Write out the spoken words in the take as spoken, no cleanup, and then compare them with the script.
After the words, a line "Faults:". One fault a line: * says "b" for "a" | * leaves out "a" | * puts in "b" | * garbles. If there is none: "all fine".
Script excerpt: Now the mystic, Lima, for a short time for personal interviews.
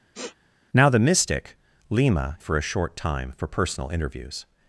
Now the mystic, Lima, for a short time for personal interviews.
Faults:
all fine